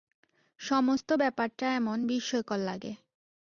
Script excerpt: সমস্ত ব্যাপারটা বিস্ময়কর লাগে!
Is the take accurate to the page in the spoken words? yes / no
no